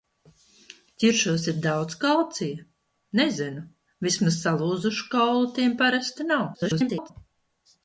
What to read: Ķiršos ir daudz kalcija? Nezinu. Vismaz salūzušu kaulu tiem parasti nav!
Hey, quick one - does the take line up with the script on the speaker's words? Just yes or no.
no